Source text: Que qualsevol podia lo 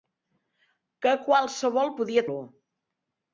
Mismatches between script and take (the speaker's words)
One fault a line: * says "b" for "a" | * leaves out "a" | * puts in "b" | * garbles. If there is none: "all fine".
all fine